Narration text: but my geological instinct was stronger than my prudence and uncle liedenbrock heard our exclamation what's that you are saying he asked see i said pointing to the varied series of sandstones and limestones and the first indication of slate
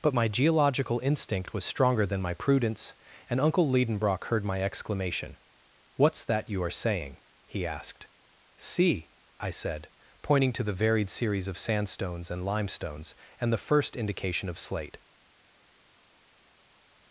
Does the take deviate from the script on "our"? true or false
true